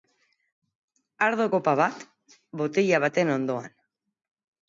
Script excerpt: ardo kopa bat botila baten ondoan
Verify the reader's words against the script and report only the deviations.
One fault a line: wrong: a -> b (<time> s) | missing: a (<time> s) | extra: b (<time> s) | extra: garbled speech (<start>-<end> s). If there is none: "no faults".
no faults